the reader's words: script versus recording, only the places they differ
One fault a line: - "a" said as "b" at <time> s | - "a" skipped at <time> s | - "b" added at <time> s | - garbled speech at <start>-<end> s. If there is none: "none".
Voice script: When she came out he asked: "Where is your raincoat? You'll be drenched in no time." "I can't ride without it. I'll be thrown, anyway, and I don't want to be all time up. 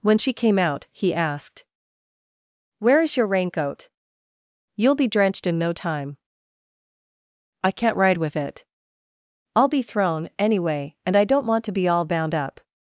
- "without" said as "with" at 8.2 s
- "time" said as "bound" at 12.0 s